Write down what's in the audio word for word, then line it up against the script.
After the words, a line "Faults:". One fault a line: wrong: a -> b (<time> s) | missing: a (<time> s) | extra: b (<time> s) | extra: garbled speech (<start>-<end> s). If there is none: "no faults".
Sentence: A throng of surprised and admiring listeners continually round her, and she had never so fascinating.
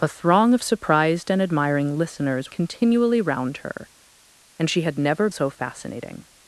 A throng of surprised and admiring listeners continually round her, and she had never so fascinating.
Faults:
no faults